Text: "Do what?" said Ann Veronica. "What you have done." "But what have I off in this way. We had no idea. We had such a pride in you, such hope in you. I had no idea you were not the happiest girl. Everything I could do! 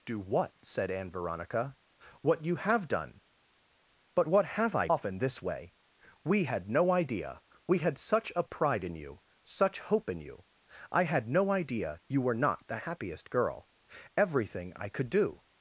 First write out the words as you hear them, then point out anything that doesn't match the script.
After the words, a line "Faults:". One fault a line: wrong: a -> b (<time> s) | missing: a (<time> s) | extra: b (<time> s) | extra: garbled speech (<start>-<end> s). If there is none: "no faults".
"Do what?" said Ann Veronica. "What you have done." "But what have I off in this way. We had no idea. We had such a pride in you, such hope in you. I had no idea you were not the happiest girl. Everything I could do!
Faults:
no faults